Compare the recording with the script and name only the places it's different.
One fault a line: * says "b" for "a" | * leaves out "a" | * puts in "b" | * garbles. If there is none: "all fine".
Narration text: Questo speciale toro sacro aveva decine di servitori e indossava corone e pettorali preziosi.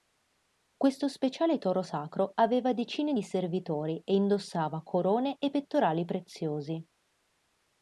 all fine